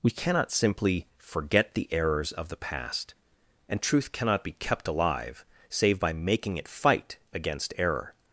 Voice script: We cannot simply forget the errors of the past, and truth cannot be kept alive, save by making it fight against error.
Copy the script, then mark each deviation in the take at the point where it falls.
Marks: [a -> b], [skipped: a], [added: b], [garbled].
We cannot simply forget the errors of the past, and truth cannot be kept alive, save by making it fight against error.